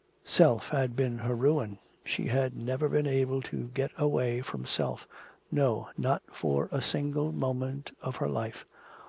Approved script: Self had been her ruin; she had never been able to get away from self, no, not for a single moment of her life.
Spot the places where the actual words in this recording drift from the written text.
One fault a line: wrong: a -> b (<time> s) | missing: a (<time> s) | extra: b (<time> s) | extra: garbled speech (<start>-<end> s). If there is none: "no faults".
no faults